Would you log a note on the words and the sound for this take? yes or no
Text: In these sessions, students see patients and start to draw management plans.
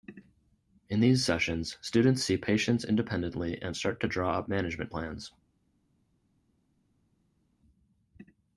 yes